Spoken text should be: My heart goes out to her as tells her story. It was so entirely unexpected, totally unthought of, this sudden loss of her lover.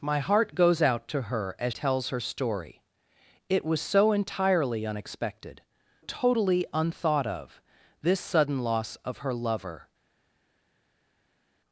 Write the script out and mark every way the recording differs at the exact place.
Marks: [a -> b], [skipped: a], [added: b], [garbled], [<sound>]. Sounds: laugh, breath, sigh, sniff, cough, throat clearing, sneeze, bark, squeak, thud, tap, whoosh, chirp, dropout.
My heart goes out to her as tells her story. It was so entirely unexpected, totally unthought of, this sudden loss of her lover.